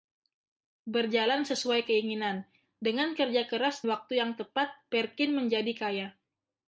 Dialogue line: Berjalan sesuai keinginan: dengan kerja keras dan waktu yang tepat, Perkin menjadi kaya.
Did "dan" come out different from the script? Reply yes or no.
yes